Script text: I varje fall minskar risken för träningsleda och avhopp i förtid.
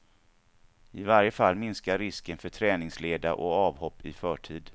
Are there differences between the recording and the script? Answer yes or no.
no